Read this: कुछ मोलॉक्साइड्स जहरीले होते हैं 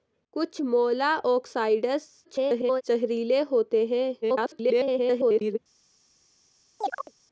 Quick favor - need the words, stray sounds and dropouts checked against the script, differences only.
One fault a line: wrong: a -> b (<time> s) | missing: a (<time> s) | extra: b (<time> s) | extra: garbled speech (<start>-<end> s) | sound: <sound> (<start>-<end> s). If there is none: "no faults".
extra: garbled speech (2.2-2.8 s)
extra: garbled speech (4.2-5.6 s)
sound: chirp (6.8-7.1 s)